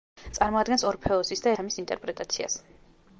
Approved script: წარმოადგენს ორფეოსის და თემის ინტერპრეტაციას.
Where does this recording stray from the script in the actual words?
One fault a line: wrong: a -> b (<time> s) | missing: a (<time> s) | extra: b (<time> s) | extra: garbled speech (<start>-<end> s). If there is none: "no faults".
no faults